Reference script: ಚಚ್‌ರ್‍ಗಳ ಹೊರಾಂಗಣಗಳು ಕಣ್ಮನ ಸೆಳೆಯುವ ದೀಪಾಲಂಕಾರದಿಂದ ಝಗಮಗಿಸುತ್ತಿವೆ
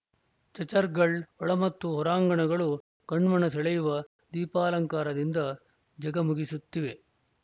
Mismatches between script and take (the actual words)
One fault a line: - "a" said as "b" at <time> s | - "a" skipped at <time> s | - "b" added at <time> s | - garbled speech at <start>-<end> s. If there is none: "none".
- "ಒಳ ಮತ್ತು" added at 1.4 s